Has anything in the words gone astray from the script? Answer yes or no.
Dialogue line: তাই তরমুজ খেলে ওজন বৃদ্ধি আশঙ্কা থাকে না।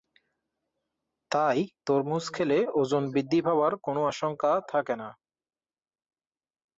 yes